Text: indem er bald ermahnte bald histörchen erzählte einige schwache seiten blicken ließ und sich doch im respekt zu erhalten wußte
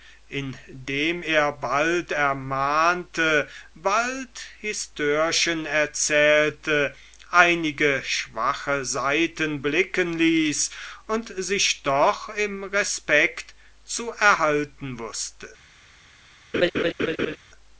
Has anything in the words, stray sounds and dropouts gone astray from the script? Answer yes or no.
yes